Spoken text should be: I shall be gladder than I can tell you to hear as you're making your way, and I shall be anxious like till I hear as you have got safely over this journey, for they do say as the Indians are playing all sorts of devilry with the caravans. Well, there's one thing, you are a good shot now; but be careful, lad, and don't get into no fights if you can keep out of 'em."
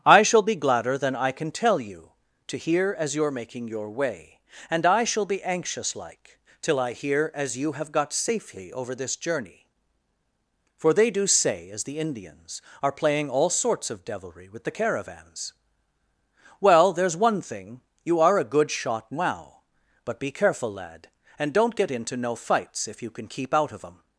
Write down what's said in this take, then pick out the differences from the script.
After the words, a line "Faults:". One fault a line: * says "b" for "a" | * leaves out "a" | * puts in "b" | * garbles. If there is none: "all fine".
I shall be gladder than I can tell you to hear as you're making your way, and I shall be anxious like till I hear as you have got safely over this journey, for they do say as the Indians are playing all sorts of devilry with the caravans. Well, there's one thing, you are a good shot now; but be careful, lad, and don't get into no fights if you can keep out of 'em."
Faults:
all fine